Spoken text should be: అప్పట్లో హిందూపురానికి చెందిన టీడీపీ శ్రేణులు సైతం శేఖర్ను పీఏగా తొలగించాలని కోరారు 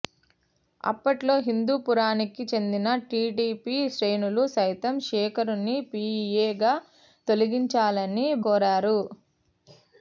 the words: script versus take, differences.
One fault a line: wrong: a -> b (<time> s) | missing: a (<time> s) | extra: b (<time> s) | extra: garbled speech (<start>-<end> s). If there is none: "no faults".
no faults